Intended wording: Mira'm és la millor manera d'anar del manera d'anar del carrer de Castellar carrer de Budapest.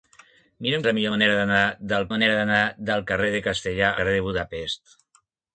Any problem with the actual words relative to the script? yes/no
no